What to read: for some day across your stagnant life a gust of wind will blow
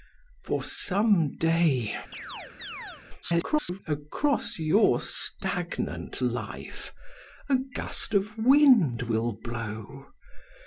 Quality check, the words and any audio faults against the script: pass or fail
fail